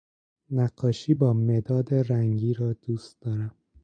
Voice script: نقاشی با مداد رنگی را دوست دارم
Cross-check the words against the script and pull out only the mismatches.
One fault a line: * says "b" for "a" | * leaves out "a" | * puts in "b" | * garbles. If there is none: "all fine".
all fine